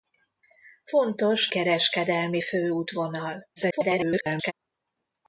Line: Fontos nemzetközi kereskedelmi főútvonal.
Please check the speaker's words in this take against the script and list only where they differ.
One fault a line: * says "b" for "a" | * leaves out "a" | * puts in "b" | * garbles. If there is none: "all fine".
* leaves out "nemzetközi"
* garbles